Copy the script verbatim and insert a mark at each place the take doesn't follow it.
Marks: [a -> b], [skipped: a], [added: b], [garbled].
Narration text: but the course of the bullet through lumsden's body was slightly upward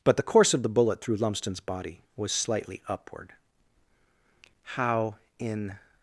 but the course of the bullet through lumsden's body was slightly upward [added: how in]